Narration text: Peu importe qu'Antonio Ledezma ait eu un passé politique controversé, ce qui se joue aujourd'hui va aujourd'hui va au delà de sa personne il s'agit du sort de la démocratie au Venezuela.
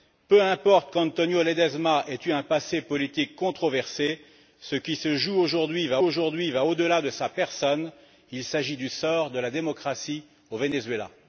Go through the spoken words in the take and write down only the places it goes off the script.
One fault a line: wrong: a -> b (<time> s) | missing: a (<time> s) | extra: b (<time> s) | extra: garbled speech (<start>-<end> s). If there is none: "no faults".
no faults